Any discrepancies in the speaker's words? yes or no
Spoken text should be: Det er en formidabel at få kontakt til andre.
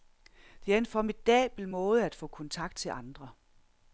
yes